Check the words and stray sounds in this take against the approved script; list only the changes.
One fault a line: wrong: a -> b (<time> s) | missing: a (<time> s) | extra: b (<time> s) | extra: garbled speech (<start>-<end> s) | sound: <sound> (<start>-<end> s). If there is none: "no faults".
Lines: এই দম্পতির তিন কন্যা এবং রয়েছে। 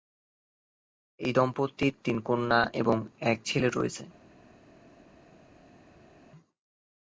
extra: এক ছেলে (3.2 s)